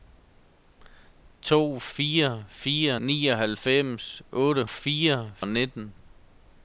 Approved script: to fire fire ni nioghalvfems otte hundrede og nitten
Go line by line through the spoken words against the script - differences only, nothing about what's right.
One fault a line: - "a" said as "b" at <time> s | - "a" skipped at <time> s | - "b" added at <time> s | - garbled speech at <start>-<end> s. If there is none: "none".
- "ni" skipped at 3.0 s
- "hundrede" said as "fire" at 4.7 s